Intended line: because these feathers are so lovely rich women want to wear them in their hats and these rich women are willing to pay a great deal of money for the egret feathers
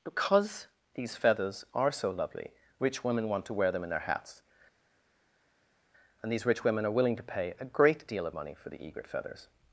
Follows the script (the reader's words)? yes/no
yes